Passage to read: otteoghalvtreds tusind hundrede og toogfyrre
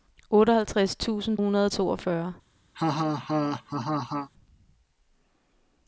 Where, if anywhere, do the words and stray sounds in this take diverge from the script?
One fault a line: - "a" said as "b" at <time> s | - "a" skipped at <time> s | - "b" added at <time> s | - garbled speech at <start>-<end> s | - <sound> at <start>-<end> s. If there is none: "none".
- laugh at 2.7-4.3 s